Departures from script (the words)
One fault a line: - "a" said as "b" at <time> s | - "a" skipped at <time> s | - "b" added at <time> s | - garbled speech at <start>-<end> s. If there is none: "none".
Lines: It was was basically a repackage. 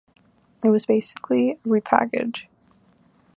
- "was" skipped at 0.9 s